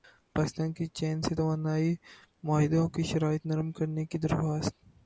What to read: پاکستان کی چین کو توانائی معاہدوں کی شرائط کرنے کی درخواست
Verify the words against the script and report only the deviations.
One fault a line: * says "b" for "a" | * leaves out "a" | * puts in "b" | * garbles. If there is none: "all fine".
* says "سے" for "کو"
* puts in "نرم"